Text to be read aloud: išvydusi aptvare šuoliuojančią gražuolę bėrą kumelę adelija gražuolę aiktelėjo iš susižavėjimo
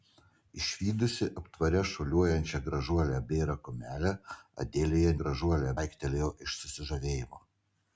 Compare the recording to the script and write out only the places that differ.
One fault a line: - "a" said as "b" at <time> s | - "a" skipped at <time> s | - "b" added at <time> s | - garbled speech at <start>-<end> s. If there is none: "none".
none